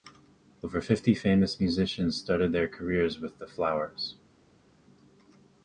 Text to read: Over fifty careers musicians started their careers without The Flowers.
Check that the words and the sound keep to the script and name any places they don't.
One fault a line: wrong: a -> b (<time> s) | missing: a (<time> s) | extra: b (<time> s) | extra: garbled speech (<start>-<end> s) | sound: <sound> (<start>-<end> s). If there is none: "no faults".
wrong: careers -> famous (1.1 s)
wrong: without -> with (3.2 s)